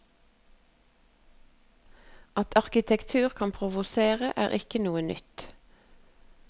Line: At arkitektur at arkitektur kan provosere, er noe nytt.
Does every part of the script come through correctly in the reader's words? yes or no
no